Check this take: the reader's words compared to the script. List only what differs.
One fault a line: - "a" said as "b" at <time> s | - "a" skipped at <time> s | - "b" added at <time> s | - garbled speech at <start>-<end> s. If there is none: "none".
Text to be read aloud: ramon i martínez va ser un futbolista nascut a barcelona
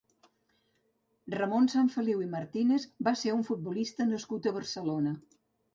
- "sanfeliu" added at 1.8 s